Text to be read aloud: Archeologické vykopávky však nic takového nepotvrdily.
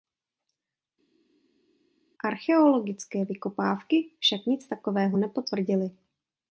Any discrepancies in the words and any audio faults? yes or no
no